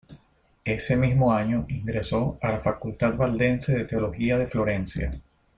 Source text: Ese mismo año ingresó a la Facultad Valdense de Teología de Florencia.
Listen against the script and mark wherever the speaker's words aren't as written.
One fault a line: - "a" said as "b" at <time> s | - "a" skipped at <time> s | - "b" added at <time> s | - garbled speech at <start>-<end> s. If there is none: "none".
none